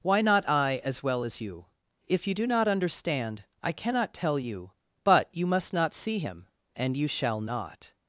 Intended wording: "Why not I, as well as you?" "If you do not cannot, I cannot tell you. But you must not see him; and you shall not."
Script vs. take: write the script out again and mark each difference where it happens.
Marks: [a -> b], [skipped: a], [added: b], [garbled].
"Why not I, as well as you?" "If you do not [cannot, -> understand] I cannot tell you. But you must not see him; and you shall not."